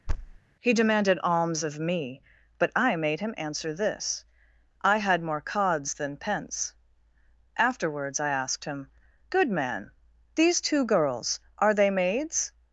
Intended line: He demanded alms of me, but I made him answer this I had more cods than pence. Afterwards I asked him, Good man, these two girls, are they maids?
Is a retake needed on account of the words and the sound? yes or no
yes